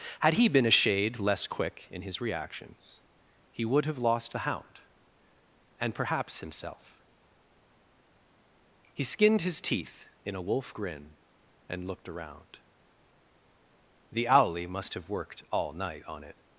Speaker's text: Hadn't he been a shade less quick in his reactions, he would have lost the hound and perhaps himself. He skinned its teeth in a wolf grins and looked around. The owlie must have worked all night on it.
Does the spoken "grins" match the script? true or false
false